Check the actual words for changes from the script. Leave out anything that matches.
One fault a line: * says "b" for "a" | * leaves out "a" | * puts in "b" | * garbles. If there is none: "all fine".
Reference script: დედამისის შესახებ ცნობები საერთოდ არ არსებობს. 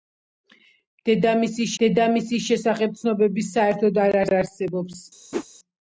* puts in "დედამისის"
* puts in "არ"